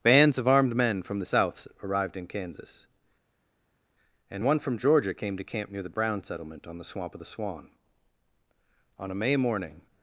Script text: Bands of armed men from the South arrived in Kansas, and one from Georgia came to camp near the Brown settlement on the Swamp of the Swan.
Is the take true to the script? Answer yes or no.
no